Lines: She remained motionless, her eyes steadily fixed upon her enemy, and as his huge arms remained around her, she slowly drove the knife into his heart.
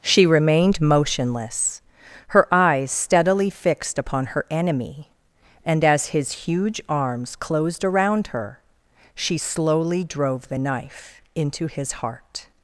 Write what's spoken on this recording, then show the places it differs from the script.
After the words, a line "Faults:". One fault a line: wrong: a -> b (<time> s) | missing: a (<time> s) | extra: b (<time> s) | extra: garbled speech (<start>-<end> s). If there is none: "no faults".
She remained motionless, her eyes steadily fixed upon her enemy, and as his huge arms closed around her, she slowly drove the knife into his heart.
Faults:
wrong: remained -> closed (7.3 s)